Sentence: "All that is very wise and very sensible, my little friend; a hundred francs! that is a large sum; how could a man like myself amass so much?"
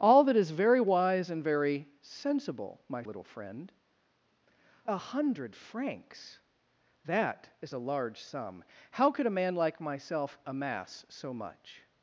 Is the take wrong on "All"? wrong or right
right